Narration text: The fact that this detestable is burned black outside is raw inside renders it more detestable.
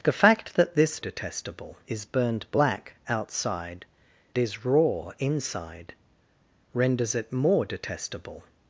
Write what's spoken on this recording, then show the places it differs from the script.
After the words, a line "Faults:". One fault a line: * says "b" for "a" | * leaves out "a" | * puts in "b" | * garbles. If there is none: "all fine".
The fact that this detestable is burned black outside is raw inside renders it more detestable.
Faults:
all fine